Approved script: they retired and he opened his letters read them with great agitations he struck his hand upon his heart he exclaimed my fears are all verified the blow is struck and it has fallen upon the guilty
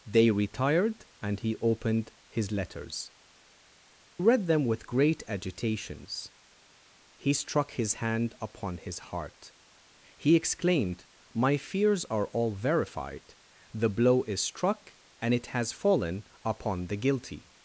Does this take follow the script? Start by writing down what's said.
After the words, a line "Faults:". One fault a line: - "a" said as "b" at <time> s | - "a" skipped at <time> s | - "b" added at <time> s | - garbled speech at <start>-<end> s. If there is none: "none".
they retired and he opened his letters read them with great agitations he struck his hand upon his heart he exclaimed my fears are all verified the blow is struck and it has fallen upon the guilty
Faults:
none